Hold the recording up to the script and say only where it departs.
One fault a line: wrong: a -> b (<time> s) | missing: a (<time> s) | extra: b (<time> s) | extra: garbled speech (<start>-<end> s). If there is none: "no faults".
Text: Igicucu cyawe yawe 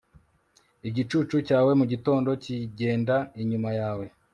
extra: mugitondo kigenda inyuma (1.8 s)